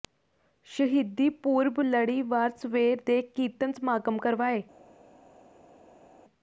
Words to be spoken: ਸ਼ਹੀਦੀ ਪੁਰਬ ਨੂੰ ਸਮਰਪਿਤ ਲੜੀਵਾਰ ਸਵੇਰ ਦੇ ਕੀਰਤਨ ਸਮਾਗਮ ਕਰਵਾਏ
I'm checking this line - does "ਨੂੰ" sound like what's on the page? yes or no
no